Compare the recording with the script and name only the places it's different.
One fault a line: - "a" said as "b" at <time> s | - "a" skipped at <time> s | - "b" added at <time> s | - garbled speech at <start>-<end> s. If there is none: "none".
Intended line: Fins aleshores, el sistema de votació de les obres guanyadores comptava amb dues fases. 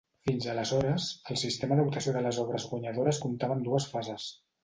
none